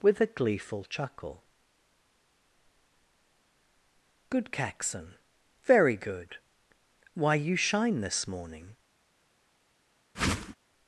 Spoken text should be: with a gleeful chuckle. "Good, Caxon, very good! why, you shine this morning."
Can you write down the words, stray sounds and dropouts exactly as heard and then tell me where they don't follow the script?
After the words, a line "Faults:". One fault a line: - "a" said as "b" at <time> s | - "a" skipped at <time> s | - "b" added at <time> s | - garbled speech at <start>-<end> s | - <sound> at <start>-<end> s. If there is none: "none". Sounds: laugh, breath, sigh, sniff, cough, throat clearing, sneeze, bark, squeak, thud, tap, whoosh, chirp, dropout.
with a gleeful chuckle. "Good, Caxon, very good! why, you shine this morning."
Faults:
- whoosh at 10.1-10.5 s